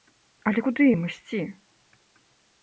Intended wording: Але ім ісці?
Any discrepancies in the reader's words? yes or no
yes